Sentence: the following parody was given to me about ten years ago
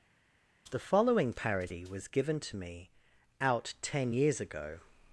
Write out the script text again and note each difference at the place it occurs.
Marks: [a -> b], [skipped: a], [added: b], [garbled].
the following parody was given to me [about -> out] ten years ago